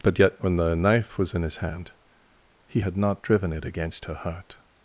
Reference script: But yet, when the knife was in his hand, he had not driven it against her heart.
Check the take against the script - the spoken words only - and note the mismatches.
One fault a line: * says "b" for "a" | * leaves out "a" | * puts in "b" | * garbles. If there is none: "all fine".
all fine